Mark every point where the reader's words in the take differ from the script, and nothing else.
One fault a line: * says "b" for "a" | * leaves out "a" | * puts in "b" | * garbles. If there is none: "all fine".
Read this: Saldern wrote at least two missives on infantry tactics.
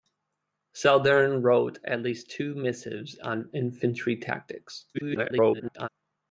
* garbles